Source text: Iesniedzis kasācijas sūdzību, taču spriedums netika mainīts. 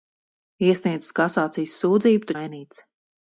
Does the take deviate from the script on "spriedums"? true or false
true